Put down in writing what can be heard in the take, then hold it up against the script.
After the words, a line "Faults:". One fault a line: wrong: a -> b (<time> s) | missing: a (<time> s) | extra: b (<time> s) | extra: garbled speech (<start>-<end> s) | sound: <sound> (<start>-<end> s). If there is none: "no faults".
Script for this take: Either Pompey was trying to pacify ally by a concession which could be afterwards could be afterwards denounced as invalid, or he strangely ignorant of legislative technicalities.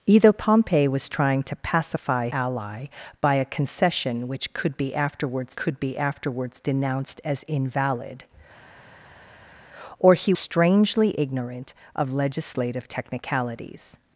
Either Pompey was trying to pacify ally by a concession which could be afterwards could be afterwards denounced as invalid, or he strangely ignorant of legislative technicalities.
Faults:
no faults